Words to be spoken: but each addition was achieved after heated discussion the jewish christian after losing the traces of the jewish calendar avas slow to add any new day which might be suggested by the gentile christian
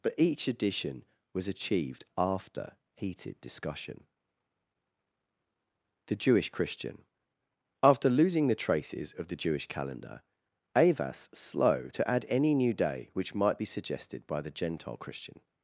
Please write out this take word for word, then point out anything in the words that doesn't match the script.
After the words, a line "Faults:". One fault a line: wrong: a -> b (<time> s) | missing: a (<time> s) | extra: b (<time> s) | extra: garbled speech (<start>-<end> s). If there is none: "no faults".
but each addition was achieved after heated discussion the jewish christian after losing the traces of the jewish calendar avas slow to add any new day which might be suggested by the gentile christian
Faults:
no faults